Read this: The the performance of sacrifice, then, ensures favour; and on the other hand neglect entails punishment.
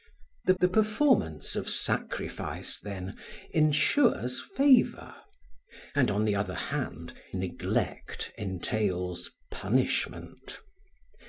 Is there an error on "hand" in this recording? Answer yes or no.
no